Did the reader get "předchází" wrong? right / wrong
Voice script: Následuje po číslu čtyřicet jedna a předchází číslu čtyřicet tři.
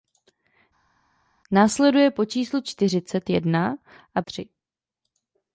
wrong